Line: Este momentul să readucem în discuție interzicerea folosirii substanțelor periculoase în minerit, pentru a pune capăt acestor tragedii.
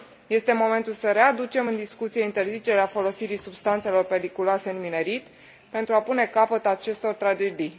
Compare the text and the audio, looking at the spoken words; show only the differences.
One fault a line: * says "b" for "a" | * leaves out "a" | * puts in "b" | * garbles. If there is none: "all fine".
all fine